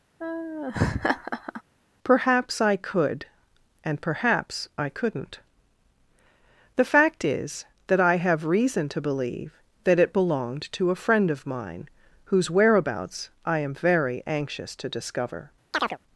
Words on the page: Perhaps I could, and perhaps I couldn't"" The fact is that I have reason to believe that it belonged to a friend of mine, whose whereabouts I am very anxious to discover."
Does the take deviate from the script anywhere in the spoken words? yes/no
no